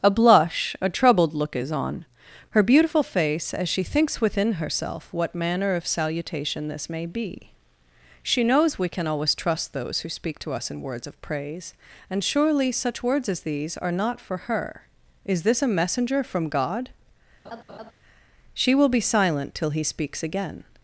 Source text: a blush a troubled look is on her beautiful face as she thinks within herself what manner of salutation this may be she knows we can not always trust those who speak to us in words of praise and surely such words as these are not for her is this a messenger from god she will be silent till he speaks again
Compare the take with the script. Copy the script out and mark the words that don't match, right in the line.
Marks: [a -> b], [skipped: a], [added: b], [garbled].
a blush a troubled look is on her beautiful face as she thinks within herself what manner of salutation this may be she knows we can [skipped: not] always trust those who speak to us in words of praise and surely such words as these are not for her is this a messenger from god she will be silent till he speaks again